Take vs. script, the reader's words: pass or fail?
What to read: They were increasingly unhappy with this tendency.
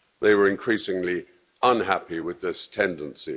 pass